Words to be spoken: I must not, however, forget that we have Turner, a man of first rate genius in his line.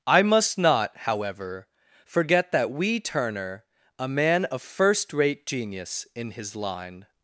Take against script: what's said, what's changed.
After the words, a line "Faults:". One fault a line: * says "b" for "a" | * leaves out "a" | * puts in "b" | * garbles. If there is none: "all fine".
I must not, however, forget that we Turner, a man of first rate genius in his line.
Faults:
* leaves out "have"